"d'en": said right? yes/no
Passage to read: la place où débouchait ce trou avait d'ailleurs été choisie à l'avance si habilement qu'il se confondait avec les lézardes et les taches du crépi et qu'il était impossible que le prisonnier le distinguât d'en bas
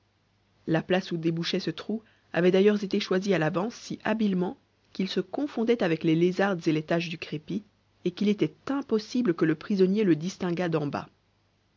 yes